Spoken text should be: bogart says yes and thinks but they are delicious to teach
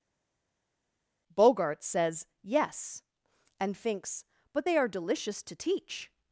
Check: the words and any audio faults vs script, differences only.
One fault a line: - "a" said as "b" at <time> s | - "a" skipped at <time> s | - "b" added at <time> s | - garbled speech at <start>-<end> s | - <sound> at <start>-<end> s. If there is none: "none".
none